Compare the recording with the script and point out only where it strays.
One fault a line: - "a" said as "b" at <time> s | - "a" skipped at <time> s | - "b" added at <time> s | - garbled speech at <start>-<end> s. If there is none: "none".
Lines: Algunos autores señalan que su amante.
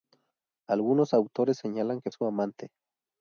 none